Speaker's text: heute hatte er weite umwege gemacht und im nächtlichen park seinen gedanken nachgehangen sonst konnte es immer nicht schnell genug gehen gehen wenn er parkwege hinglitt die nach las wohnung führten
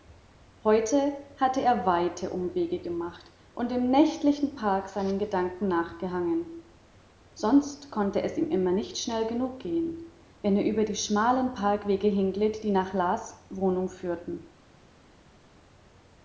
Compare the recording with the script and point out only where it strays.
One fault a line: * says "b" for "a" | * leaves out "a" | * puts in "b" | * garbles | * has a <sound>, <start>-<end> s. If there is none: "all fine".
* puts in "ihm"
* leaves out "gehen"
* puts in "über die schmalen"